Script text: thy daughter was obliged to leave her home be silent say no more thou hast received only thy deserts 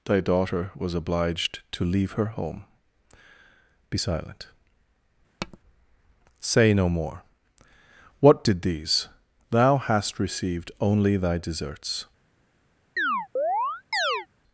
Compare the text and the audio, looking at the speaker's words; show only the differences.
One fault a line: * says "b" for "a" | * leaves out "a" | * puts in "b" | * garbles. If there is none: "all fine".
* puts in "what did these"